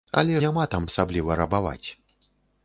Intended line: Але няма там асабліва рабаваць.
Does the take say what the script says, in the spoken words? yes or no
yes